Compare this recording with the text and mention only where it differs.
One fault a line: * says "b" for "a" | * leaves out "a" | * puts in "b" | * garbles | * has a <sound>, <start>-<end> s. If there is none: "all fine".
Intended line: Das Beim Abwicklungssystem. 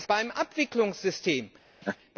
* has a laugh, 1.8-2.0 s